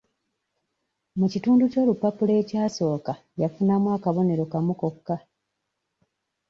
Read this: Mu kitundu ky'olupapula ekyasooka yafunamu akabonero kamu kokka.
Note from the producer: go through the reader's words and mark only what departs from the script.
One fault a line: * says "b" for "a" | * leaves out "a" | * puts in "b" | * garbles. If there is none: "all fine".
all fine